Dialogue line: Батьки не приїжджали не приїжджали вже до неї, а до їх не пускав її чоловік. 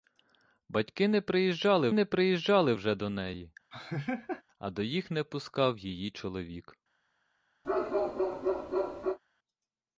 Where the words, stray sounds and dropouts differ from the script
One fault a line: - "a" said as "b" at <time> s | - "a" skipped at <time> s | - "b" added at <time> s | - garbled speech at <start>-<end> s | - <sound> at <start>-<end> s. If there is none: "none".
- laugh at 3.7-4.4 s
- bark at 7.6-9.2 s